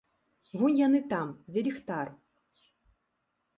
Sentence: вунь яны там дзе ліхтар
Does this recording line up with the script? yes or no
yes